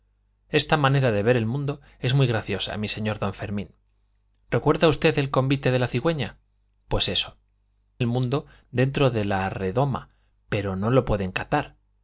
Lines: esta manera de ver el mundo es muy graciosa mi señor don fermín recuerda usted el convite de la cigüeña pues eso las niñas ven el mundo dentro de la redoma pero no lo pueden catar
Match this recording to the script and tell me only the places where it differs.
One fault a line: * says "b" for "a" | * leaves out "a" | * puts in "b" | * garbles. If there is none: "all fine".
* leaves out "las niñas ven"